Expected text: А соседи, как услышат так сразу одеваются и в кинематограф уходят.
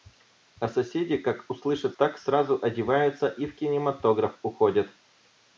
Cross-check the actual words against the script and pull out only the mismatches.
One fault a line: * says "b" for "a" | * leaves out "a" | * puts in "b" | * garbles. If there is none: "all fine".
all fine